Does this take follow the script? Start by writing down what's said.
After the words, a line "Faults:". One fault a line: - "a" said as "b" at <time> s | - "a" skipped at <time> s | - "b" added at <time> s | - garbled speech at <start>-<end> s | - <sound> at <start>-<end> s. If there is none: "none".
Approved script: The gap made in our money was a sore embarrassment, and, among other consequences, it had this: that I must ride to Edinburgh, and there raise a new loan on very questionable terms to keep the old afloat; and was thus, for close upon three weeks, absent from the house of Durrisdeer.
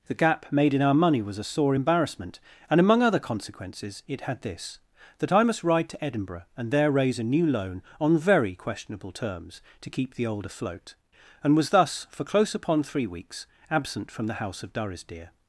The gap made in our money was a sore embarrassment, and, among other consequences, it had this: that I must ride to Edinburgh, and there raise a new loan on very questionable terms to keep the old afloat; and was thus, for close upon three weeks, absent from the house of Durrisdeer.
Faults:
none